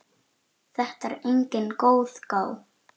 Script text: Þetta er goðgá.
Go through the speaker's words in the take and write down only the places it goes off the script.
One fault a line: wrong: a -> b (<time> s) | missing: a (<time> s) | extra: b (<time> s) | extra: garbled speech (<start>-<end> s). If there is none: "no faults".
extra: engin (1.3 s)